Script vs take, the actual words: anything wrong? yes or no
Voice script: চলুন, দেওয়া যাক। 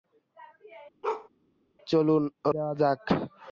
no